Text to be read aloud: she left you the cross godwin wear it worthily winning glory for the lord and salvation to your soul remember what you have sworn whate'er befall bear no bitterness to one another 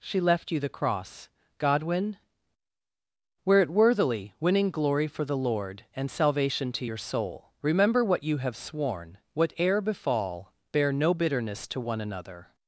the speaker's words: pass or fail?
pass